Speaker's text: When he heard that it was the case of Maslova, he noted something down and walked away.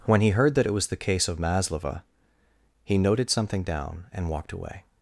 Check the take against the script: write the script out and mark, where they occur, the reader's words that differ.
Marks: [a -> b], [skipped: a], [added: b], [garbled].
When he heard that it was the case of Maslova, he noted something down and walked away.